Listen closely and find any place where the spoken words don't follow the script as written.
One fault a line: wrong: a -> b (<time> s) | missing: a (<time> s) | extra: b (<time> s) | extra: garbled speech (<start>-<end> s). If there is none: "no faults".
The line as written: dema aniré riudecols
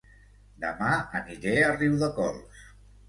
extra: a (1.6 s)